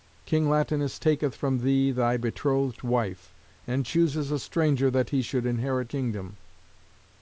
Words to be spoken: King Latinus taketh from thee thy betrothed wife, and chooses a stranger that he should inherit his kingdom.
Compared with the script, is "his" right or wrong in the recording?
wrong